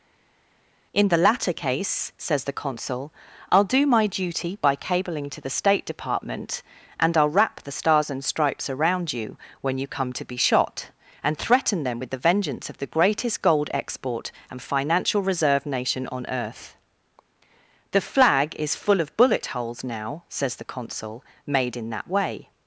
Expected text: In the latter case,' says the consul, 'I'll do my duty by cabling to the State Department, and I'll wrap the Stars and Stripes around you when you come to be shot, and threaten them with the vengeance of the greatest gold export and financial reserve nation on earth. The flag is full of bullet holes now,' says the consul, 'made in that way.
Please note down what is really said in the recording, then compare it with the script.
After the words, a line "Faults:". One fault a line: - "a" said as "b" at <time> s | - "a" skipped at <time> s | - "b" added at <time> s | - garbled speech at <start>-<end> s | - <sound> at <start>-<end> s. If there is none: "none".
In the latter case,' says the consul, 'I'll do my duty by cabling to the State Department, and I'll wrap the Stars and Stripes around you when you come to be shot, and threaten them with the vengeance of the greatest gold export and financial reserve nation on earth. The flag is full of bullet holes now,' says the consul, 'made in that way.
Faults:
none